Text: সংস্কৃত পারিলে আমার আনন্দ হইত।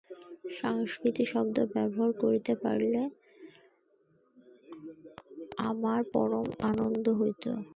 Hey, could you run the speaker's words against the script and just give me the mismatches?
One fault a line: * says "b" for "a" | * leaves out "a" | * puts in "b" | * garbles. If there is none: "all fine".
* puts in "শব্দ ব্যবহার করিতে"
* puts in "পরম"